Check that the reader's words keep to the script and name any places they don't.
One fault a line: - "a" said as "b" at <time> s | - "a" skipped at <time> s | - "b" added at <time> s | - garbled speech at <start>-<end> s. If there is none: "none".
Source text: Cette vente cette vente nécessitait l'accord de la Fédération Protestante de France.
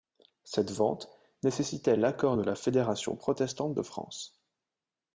- "cette vente" skipped at 1.1 s